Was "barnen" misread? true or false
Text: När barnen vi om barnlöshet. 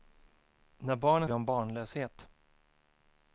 false